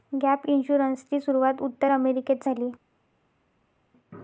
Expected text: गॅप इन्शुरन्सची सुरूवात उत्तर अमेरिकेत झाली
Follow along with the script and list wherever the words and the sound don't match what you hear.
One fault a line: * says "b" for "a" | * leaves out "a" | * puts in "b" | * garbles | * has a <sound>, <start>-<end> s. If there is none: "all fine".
all fine